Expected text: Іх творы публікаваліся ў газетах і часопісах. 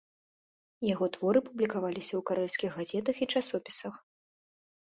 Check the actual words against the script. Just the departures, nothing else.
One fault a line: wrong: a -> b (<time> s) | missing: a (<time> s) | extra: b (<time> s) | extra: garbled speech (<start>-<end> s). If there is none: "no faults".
wrong: Іх -> Яго (0.9 s)
extra: карэльскіх (2.3 s)